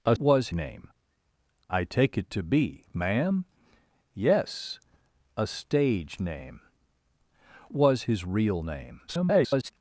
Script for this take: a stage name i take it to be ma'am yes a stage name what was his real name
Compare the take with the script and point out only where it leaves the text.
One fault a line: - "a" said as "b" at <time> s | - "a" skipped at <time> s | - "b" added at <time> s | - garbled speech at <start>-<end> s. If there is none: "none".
- "stage" said as "was" at 0.2 s
- "what" skipped at 6.6 s
- garbled speech at 9.1-9.7 s